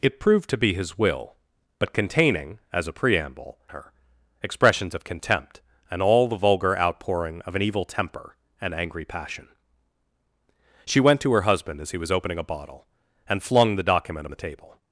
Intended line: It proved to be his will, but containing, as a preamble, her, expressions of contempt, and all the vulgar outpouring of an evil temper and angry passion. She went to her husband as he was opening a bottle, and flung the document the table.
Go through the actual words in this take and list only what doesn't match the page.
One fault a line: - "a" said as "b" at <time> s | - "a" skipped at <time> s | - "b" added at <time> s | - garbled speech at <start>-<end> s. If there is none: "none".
none